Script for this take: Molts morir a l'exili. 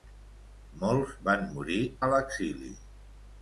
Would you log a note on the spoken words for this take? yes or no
yes